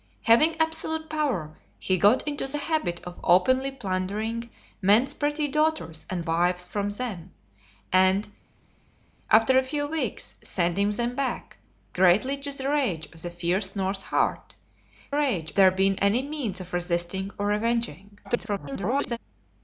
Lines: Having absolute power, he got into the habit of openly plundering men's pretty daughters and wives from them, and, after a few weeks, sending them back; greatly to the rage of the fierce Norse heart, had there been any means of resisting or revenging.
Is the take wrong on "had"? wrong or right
wrong